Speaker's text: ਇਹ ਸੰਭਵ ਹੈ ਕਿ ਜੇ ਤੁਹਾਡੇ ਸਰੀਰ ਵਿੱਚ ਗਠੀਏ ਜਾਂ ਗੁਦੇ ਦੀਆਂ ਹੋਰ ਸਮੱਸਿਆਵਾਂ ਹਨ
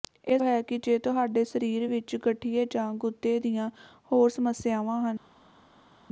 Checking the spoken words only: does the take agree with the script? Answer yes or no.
no